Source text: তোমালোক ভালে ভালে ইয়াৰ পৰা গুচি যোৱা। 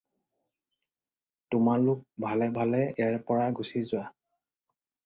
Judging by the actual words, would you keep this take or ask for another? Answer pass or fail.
pass